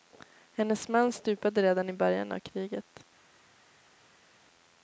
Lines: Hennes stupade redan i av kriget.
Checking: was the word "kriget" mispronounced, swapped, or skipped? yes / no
no